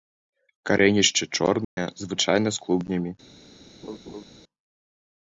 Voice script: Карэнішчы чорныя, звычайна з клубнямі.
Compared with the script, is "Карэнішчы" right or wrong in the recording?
right